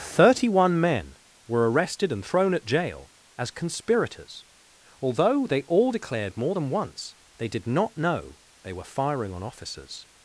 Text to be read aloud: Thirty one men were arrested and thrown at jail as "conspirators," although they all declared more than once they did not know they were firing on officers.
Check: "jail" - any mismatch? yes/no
no